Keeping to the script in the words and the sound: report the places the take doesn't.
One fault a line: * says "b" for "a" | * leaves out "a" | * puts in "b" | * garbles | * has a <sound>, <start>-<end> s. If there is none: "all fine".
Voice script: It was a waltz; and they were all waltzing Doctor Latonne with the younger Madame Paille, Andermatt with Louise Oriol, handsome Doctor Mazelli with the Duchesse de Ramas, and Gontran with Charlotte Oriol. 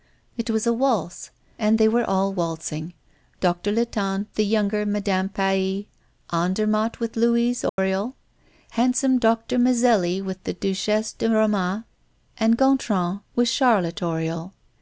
* leaves out "with"
* has a dropout, 7.7-7.8 s